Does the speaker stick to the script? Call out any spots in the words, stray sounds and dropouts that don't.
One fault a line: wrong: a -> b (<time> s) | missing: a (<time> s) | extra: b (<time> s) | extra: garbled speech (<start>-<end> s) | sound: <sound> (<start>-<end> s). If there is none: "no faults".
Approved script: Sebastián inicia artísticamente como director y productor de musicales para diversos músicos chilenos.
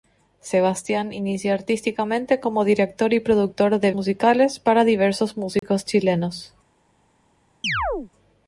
sound: dropout (5.6-5.6 s)
sound: chirp (7.6-8.1 s)